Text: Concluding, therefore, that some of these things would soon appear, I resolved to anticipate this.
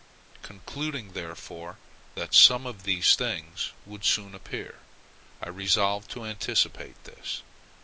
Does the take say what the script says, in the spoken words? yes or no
yes